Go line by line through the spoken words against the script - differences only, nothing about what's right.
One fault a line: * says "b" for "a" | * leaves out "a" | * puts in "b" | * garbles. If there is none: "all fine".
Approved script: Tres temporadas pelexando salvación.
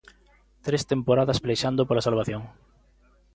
* puts in "pola"